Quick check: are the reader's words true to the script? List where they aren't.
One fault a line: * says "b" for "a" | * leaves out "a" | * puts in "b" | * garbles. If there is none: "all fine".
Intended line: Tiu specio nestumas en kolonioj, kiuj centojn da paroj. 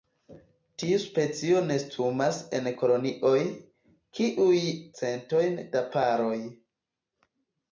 all fine